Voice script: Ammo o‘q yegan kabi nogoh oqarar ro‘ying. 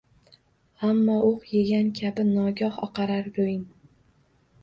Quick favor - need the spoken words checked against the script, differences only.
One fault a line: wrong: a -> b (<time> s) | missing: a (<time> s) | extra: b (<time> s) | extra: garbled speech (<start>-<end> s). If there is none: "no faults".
no faults